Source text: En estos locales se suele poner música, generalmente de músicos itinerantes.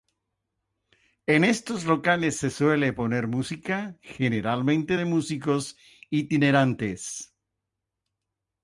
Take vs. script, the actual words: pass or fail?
pass